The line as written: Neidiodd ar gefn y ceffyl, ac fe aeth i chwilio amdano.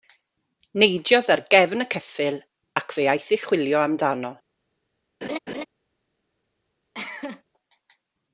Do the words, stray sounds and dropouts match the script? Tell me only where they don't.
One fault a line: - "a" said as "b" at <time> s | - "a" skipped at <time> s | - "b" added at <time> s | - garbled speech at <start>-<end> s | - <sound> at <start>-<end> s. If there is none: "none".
- laugh at 5.2-5.7 s
- cough at 6.9-7.4 s